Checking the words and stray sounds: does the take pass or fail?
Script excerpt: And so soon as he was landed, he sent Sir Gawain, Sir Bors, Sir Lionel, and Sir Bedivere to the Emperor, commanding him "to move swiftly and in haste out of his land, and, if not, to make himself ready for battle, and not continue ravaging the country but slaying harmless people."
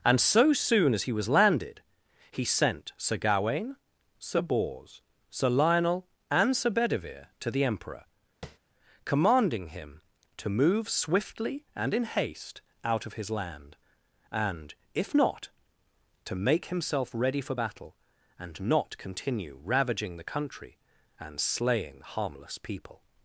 fail